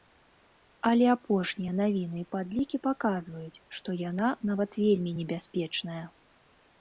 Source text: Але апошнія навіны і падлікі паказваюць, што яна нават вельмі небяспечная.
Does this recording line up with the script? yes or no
yes